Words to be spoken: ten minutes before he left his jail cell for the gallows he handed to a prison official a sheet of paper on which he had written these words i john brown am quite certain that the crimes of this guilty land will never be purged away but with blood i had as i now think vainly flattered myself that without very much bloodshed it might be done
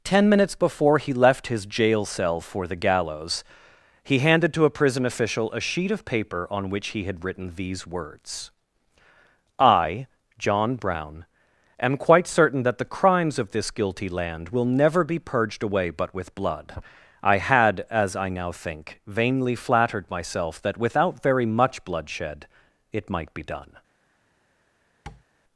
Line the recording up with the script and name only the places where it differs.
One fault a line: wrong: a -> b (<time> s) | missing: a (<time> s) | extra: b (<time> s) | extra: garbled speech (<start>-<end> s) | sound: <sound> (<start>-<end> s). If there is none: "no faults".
sound: tap (25.1-25.2 s)